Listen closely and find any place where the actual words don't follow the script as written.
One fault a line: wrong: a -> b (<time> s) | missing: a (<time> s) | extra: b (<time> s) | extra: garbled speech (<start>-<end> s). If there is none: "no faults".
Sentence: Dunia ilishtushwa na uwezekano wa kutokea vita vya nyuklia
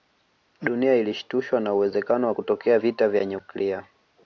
no faults